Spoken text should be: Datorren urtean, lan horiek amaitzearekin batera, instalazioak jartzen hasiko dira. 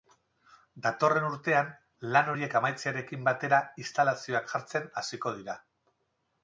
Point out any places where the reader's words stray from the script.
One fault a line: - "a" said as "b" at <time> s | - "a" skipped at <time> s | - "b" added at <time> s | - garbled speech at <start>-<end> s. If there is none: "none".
none